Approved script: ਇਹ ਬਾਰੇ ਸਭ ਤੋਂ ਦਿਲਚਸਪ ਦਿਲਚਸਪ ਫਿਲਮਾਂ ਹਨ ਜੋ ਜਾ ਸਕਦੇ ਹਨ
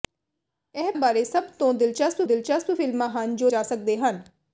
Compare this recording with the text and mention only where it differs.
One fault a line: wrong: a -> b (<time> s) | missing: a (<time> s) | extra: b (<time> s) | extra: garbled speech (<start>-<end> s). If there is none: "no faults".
no faults